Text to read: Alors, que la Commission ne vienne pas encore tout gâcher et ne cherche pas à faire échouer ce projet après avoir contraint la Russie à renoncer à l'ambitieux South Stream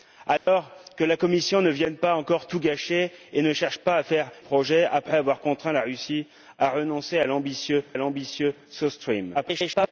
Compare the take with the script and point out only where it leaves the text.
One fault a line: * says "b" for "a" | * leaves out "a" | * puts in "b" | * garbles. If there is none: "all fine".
* leaves out "échouer ce"
* puts in "l'ambitieux"
* garbles